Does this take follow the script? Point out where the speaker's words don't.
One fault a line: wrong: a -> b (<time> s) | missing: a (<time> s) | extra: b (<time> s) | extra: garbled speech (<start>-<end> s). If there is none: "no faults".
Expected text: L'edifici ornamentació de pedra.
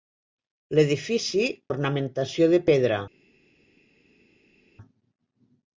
no faults